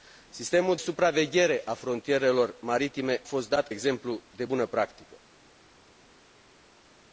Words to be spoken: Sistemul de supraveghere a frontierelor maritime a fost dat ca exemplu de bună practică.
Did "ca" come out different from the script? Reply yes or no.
yes